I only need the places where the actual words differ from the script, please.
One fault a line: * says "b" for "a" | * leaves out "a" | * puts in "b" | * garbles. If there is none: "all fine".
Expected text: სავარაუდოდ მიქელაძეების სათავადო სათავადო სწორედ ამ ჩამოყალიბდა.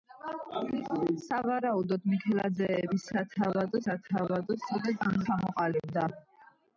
all fine